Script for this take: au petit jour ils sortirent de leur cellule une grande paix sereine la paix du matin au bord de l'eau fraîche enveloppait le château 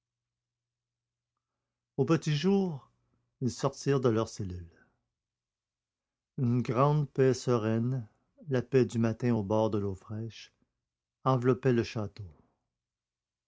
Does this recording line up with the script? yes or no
yes